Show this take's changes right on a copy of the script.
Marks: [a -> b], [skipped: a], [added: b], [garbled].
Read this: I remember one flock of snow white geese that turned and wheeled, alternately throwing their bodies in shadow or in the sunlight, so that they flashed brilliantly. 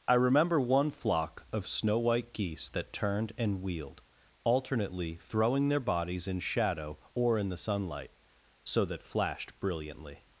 I remember one flock of snow white geese that turned and wheeled, alternately throwing their bodies in shadow or in the sunlight, so that [skipped: they] flashed brilliantly.